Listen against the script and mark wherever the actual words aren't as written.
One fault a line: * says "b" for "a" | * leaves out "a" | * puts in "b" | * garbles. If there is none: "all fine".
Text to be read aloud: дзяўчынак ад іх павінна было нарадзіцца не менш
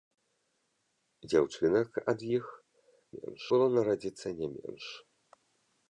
* says "менш" for "павінна"